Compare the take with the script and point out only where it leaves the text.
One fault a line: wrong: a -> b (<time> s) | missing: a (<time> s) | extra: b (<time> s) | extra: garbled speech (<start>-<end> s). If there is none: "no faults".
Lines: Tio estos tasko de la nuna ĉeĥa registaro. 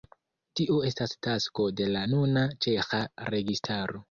wrong: estos -> estas (0.9 s)